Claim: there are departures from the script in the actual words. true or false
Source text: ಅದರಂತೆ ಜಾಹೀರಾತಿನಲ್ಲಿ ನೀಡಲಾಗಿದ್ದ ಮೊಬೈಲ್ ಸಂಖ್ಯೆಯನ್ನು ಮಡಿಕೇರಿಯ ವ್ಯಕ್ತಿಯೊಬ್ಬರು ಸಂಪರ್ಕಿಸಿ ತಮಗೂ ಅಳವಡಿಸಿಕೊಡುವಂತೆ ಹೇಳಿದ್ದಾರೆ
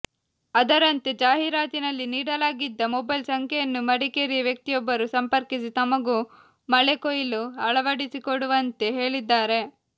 true